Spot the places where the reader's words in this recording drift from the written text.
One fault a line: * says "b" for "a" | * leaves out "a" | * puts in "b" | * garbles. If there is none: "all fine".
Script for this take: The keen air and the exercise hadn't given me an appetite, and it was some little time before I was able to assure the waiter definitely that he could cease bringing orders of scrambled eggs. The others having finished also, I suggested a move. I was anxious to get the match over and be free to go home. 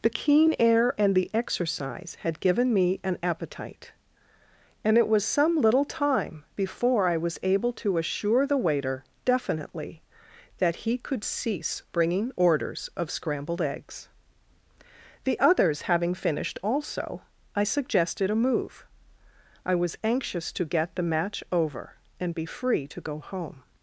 * says "had" for "hadn't"